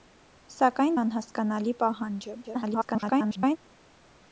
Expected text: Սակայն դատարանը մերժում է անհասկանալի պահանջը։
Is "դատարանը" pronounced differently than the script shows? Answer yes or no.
yes